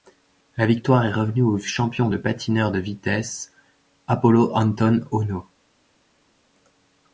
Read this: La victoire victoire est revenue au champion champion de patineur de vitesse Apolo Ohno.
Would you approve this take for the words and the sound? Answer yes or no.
no